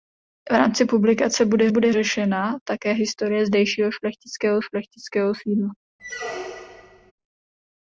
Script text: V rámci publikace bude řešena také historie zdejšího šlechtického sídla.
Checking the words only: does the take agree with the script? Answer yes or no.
no